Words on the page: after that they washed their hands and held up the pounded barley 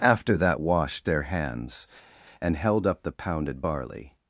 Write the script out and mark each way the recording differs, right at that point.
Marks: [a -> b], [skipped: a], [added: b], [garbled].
after that [skipped: they] washed their hands and held up the pounded barley